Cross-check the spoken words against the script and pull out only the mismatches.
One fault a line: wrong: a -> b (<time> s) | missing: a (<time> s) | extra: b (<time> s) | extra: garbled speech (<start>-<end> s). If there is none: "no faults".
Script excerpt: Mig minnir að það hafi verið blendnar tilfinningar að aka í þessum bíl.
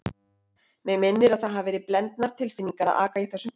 no faults